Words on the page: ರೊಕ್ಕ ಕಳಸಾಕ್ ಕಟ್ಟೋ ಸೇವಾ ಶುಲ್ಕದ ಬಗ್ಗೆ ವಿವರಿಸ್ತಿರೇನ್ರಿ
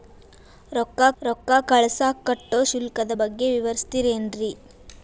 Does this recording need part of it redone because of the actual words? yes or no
yes